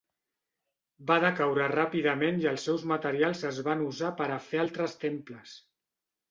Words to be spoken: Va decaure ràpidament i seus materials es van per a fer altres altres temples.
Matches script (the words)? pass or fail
fail